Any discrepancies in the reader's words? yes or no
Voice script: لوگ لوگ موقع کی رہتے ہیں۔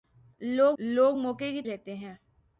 no